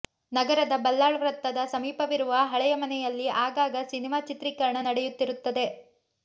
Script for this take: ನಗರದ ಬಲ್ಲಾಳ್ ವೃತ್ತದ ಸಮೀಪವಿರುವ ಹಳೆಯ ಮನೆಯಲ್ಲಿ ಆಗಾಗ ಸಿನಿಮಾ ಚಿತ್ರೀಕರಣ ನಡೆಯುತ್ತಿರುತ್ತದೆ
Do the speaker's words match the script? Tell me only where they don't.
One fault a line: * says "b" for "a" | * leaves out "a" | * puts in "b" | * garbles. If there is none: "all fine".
all fine